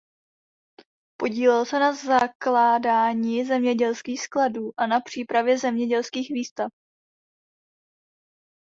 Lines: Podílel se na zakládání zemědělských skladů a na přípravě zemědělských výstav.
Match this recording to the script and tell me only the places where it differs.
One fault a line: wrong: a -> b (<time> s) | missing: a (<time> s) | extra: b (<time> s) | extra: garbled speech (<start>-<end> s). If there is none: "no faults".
no faults